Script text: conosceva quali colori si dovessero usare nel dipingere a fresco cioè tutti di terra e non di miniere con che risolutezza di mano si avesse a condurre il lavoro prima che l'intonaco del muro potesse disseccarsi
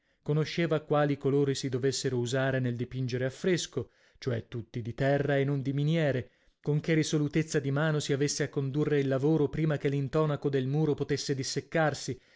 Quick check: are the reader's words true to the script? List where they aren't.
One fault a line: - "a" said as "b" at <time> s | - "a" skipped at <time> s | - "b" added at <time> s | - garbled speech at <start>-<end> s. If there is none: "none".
none